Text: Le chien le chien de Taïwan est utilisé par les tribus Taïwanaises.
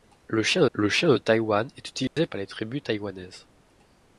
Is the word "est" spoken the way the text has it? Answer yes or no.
yes